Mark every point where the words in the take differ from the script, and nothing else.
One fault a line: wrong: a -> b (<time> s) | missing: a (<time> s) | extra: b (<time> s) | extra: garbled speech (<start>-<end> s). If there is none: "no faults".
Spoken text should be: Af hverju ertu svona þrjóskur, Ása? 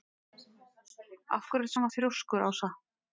no faults